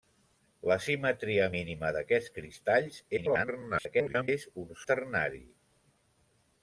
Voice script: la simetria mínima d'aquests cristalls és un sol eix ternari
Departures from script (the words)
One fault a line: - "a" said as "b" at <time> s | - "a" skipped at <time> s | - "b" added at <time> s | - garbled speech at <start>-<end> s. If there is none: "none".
- garbled speech at 3.2-4.3 s
- "sol eix" skipped at 4.8 s